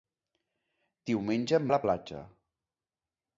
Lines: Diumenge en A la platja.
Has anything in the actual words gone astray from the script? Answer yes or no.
no